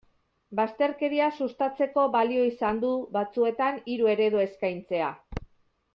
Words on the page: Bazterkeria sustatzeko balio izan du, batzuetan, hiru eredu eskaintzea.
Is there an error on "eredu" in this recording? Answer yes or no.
no